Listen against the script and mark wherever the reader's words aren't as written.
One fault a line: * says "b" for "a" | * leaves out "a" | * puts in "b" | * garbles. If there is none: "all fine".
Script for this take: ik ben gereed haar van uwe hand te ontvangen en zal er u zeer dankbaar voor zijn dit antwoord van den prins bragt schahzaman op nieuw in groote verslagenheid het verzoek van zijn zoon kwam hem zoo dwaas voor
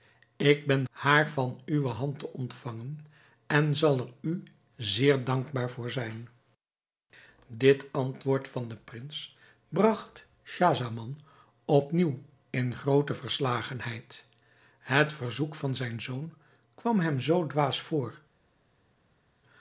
* leaves out "gereed"